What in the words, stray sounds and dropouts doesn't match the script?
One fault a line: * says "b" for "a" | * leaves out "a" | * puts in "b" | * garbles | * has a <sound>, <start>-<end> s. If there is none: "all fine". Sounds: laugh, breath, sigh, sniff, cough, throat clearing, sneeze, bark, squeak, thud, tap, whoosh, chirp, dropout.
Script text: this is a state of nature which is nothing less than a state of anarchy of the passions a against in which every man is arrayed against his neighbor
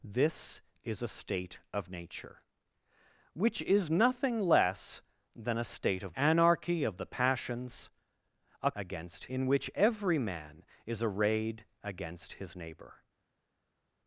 all fine